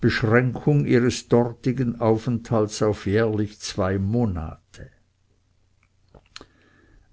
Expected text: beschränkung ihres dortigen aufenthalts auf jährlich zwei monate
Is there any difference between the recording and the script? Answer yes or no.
no